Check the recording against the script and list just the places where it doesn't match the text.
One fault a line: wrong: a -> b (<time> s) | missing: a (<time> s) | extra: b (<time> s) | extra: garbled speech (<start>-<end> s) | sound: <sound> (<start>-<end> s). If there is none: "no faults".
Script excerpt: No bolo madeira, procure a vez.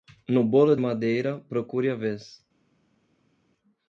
no faults